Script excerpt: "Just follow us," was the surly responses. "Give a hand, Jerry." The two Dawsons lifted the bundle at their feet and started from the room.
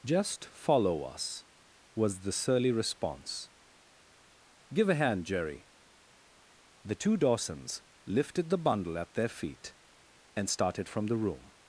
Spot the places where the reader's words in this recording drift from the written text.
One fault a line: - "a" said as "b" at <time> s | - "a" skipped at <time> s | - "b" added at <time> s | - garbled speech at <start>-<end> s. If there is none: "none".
- "responses" said as "response" at 2.7 s